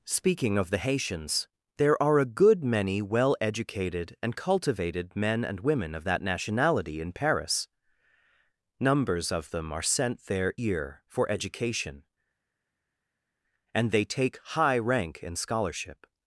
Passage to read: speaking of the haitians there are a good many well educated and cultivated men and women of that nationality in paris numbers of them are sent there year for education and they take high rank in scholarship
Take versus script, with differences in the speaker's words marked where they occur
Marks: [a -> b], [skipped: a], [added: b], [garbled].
speaking of the haitians there are a good many well educated and cultivated men and women of that nationality in paris numbers of them are sent there year for education and they take high rank in scholarship